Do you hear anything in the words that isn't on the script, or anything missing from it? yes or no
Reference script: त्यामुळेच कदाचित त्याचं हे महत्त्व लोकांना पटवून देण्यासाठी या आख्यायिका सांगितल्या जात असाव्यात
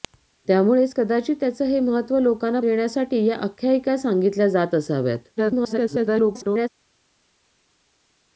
yes